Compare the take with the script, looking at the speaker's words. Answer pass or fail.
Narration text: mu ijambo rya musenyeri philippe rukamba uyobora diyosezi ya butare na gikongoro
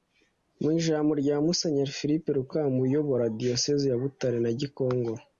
pass